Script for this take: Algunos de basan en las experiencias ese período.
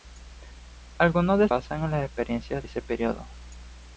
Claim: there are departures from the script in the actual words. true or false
false